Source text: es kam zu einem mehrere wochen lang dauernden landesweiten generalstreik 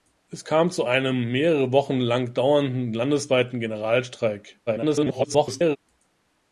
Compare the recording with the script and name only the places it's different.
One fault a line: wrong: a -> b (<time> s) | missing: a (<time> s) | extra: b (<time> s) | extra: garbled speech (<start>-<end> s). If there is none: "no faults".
extra: garbled speech (4.7-5.8 s)